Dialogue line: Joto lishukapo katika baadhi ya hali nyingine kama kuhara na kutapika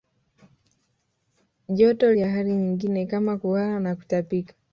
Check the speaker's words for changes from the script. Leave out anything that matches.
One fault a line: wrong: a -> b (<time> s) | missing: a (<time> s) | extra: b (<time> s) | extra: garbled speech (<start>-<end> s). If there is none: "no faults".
missing: lishukapo katika baadhi (2.1 s)